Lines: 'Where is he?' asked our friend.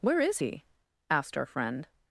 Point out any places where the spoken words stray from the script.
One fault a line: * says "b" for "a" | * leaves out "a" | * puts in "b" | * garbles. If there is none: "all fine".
all fine